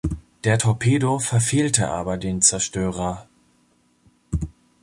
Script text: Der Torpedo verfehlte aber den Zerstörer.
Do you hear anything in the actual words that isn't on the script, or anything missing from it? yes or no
no